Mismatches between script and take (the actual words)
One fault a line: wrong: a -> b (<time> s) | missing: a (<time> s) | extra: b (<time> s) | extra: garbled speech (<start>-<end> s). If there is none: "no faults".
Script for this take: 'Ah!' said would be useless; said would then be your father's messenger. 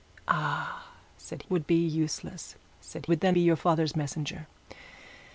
no faults